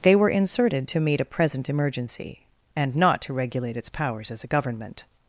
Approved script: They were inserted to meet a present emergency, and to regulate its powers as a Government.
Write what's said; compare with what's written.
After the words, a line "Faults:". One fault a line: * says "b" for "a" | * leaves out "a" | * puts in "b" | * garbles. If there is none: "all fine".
They were inserted to meet a present emergency, and not to regulate its powers as a Government.
Faults:
* puts in "not"